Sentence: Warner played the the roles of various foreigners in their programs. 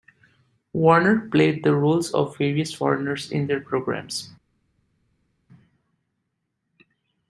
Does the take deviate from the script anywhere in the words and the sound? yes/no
yes